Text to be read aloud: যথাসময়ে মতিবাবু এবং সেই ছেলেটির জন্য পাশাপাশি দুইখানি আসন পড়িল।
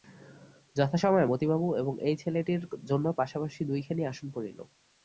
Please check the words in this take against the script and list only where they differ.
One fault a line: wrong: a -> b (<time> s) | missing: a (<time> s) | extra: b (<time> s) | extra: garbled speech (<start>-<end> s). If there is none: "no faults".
wrong: সেই -> এই (2.0 s)